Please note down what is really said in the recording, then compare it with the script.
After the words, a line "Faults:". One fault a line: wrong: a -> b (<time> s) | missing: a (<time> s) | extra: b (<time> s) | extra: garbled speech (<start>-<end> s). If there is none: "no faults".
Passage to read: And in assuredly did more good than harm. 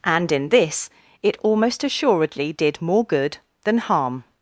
And in this it almost assuredly did more good than harm.
Faults:
extra: this it almost (0.5 s)